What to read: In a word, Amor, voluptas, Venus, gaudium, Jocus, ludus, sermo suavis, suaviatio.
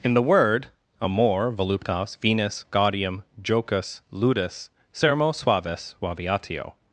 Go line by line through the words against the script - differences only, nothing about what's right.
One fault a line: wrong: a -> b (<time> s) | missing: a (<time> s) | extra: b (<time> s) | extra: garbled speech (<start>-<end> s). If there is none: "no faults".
wrong: a -> the (0.1 s)